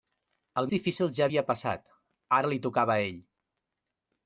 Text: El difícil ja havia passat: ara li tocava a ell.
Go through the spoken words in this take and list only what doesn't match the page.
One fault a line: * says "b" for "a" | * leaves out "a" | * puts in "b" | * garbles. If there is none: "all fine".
all fine